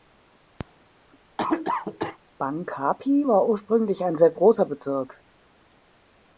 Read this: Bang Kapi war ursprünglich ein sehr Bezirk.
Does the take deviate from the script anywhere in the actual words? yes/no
yes